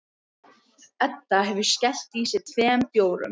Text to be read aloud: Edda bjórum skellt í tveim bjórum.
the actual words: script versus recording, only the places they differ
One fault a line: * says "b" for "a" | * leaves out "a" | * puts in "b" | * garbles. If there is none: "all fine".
* says "hefur" for "bjórum"
* puts in "sig"